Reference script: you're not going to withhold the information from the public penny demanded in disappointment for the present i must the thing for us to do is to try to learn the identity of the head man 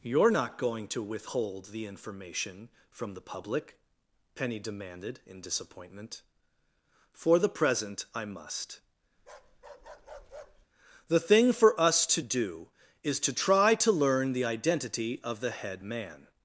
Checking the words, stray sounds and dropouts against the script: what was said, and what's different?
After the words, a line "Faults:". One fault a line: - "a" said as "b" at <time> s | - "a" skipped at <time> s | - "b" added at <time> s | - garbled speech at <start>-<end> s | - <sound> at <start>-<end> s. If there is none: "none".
you're not going to withhold the information from the public penny demanded in disappointment for the present i must the thing for us to do is to try to learn the identity of the head man
Faults:
- bark at 9.2-10.7 s